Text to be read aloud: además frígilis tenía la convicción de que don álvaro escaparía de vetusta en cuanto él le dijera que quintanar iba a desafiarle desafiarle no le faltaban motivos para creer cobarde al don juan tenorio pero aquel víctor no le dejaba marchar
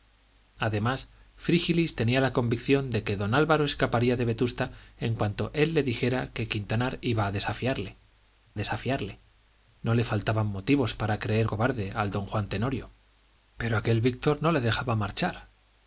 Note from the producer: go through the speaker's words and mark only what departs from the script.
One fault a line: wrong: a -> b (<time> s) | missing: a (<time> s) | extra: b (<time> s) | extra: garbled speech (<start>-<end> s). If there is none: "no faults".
no faults